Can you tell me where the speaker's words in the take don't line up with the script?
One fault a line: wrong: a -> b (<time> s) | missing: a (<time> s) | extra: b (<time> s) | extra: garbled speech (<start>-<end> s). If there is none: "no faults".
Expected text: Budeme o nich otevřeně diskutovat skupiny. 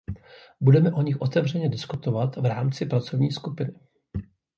extra: v rámci pracovní (2.4 s)